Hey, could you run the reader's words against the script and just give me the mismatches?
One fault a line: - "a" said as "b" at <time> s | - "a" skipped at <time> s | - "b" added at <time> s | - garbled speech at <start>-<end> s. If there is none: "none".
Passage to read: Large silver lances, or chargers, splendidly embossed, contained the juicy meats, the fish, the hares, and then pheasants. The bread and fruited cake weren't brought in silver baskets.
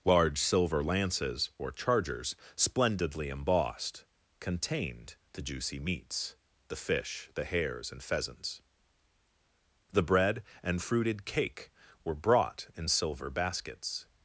- "then" skipped at 8.0 s
- "weren't" said as "were" at 12.0 s